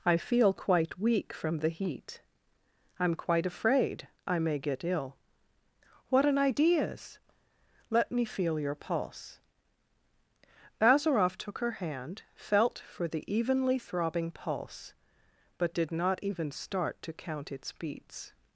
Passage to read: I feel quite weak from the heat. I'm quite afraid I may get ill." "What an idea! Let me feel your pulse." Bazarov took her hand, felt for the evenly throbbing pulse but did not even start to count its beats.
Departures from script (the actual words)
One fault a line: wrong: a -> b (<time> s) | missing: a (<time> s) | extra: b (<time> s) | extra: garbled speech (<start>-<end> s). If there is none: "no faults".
wrong: idea -> ideas (6.4 s)